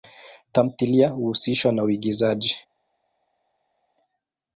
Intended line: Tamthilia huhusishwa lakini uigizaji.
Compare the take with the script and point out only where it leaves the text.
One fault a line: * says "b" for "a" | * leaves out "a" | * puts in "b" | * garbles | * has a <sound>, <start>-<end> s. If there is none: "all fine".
* says "na" for "lakini"